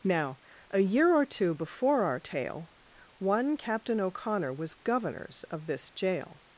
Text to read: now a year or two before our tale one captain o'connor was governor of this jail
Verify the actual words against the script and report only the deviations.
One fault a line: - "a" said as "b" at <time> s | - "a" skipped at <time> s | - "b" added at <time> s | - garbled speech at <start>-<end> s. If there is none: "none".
- "governor" said as "governors" at 4.7 s